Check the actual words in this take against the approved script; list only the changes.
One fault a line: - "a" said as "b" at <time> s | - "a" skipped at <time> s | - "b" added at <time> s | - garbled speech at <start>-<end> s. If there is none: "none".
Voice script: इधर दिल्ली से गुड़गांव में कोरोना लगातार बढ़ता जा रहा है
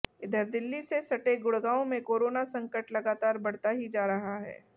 - "सटे" added at 1.0 s
- "संकट" added at 2.5 s
- "ही" added at 3.7 s